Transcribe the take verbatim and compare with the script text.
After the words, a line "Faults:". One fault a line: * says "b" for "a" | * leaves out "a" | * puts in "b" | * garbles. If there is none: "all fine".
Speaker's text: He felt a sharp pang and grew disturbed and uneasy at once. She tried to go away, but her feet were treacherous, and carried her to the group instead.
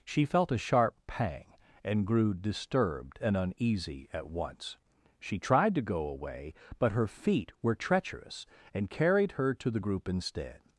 She felt a sharp pang and grew disturbed and uneasy at once. She tried to go away, but her feet were treacherous, and carried her to the group instead.
Faults:
* says "She" for "He"